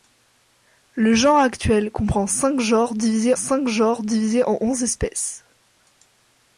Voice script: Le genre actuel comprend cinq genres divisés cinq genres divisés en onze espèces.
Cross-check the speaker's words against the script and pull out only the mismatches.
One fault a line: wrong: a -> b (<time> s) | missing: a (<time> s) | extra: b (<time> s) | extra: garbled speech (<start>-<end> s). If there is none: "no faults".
no faults